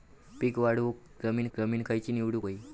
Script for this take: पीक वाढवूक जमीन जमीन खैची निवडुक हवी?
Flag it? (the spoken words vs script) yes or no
no